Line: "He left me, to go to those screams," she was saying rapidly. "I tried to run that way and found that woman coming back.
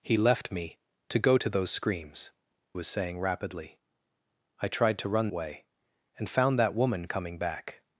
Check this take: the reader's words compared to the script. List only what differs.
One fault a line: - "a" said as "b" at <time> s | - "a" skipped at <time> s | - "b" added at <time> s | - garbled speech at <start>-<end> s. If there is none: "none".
- "she" skipped at 2.3 s
- "that" skipped at 5.3 s